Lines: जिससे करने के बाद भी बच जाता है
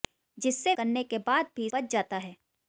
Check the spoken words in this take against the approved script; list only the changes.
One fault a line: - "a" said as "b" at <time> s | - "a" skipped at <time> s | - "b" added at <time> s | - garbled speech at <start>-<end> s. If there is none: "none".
none